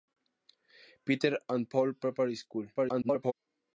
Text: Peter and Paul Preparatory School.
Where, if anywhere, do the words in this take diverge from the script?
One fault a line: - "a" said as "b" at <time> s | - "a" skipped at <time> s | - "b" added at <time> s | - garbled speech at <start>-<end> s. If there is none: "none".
- garbled speech at 2.7-3.3 s